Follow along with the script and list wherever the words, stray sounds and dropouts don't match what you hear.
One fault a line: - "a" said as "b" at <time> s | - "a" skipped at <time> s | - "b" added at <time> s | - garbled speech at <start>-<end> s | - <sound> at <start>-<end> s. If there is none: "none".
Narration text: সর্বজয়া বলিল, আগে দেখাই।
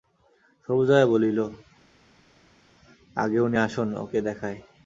- "উনি আসুন ওঁকে" added at 3.4 s